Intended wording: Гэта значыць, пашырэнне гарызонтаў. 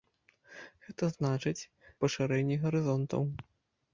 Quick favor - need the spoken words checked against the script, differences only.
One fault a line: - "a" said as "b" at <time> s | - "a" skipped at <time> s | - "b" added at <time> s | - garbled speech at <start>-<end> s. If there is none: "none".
none